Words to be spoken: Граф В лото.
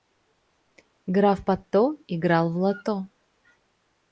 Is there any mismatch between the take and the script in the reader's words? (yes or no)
yes